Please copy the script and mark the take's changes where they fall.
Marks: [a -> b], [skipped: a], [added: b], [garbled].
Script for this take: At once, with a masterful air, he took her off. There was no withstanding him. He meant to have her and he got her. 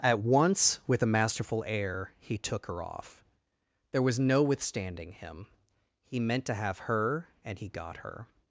At once, with a masterful air, he took her off. There was no withstanding him. He meant to have her and he got her.